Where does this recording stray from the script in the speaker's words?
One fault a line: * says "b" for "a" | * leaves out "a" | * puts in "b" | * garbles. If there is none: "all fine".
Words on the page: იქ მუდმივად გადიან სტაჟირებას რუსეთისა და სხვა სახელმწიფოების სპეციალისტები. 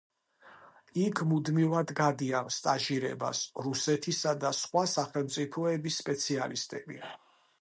all fine